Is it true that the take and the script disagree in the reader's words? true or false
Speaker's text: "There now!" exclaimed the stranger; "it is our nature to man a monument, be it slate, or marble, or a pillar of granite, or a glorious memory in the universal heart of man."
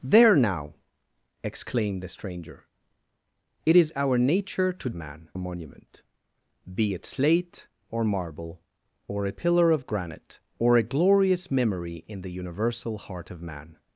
false